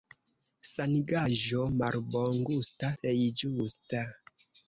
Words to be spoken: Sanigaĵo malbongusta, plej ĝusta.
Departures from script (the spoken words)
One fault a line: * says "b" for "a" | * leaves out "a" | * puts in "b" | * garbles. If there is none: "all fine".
all fine